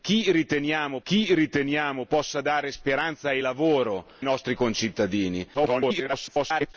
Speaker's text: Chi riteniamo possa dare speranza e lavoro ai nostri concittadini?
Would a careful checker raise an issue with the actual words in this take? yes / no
yes